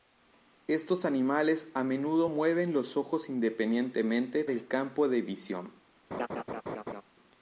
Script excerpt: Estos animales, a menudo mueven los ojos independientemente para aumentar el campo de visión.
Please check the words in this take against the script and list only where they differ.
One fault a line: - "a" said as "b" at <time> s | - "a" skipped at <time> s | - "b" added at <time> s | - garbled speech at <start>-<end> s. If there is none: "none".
- "para aumentar" skipped at 4.4 s